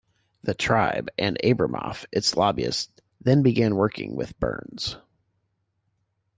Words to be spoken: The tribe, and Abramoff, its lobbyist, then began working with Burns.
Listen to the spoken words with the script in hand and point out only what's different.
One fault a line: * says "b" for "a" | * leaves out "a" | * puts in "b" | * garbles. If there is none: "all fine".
all fine